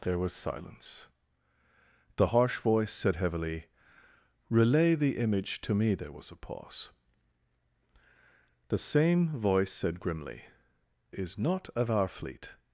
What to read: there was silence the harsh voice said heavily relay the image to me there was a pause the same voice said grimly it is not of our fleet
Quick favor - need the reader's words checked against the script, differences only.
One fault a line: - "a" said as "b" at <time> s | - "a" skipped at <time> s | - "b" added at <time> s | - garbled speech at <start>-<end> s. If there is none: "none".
- "it" skipped at 10.4 s